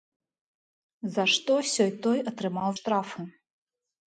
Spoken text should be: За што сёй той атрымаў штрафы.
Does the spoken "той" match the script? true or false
true